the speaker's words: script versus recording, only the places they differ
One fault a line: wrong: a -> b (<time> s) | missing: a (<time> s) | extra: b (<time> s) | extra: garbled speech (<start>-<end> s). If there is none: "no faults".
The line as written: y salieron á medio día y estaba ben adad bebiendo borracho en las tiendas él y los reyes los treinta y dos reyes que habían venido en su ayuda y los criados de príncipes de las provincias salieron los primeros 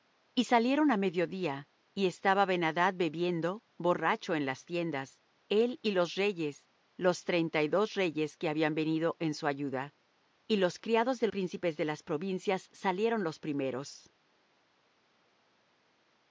no faults